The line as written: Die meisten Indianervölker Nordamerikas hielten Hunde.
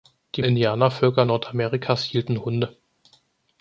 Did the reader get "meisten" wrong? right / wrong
wrong